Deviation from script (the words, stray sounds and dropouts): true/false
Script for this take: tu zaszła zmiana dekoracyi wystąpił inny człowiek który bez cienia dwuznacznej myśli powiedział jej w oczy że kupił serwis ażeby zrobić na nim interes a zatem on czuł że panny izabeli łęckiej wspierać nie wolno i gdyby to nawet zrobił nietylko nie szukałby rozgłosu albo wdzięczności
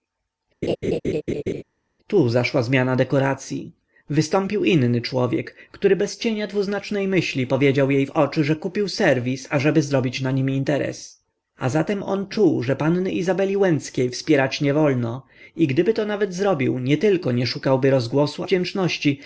true